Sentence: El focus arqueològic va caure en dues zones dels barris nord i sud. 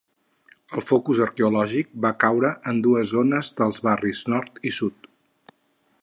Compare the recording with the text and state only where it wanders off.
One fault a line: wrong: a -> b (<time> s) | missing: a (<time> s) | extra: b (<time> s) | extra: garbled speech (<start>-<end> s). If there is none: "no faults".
no faults